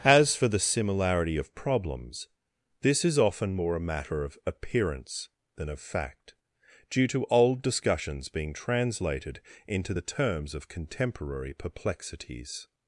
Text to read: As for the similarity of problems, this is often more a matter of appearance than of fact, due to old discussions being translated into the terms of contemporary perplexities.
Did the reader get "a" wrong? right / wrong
right